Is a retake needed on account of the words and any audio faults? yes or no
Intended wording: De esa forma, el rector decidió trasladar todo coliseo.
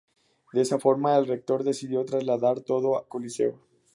no